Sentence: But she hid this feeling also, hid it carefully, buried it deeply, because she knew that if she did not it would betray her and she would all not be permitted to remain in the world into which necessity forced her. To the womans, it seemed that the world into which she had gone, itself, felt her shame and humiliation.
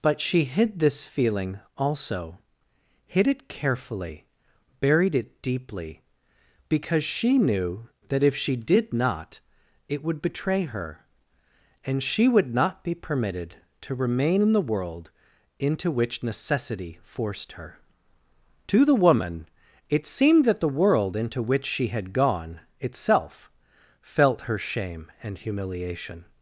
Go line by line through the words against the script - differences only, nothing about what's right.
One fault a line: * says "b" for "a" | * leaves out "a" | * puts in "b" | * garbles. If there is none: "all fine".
* leaves out "all"
* says "woman" for "womans"